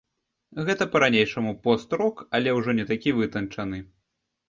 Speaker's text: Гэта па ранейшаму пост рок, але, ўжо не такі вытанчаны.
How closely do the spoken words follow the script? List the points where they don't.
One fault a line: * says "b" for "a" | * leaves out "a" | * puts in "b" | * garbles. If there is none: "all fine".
all fine